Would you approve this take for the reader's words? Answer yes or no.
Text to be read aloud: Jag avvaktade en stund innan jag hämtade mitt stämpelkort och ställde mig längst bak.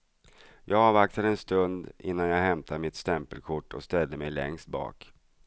yes